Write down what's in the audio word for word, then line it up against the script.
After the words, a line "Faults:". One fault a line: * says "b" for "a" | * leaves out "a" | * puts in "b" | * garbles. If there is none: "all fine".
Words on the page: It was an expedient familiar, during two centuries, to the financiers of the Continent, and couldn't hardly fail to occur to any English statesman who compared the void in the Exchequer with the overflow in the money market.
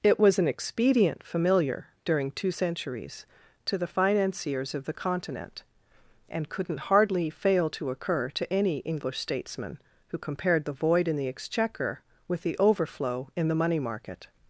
It was an expedient familiar, during two centuries, to the financiers of the Continent, and couldn't hardly fail to occur to any English statesman who compared the void in the Exchequer with the overflow in the money market.
Faults:
all fine